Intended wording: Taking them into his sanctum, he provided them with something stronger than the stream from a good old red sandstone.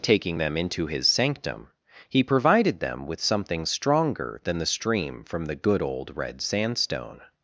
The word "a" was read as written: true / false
false